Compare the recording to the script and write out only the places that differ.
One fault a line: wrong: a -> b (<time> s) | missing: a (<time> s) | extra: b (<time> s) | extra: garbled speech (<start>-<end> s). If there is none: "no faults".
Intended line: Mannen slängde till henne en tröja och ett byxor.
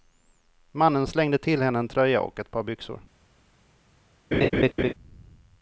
extra: par (2.5 s)